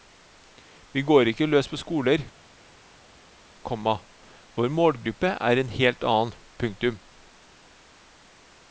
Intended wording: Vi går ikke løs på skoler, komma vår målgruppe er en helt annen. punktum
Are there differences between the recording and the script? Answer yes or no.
no